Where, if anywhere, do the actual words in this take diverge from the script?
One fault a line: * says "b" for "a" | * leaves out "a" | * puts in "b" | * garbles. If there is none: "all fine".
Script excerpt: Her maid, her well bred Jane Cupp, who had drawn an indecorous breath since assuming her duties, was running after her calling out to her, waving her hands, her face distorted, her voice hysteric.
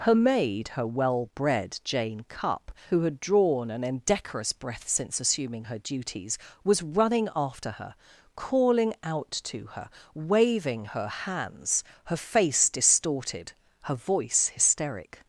all fine